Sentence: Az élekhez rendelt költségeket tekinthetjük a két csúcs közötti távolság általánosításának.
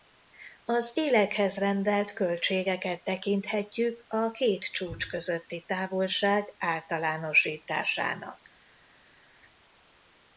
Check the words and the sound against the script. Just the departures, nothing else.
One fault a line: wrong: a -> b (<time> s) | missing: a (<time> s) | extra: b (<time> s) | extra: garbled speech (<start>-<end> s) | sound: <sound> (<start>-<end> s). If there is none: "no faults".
no faults